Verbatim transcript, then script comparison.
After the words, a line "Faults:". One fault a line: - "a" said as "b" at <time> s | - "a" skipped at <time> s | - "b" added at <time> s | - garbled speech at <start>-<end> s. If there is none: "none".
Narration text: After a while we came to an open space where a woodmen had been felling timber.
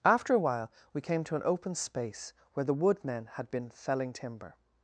After a while we came to an open space where the woodmen had been felling timber.
Faults:
- "a" said as "the" at 2.6 s